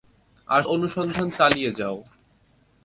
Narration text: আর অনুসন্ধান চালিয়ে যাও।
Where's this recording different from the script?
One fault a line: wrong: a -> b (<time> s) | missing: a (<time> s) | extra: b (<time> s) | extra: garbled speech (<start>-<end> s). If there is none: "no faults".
no faults